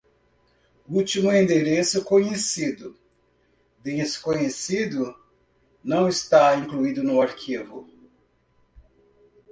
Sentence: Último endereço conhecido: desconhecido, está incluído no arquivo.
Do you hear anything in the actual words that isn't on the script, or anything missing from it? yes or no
yes